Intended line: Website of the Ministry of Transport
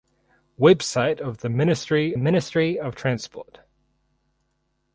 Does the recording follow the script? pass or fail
fail